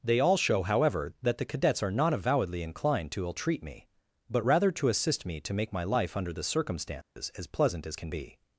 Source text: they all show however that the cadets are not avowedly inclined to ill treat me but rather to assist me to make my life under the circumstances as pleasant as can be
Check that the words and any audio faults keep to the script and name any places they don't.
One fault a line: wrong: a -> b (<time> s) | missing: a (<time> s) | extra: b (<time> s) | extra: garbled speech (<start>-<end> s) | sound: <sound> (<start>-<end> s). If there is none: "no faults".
sound: dropout (7.0-7.2 s)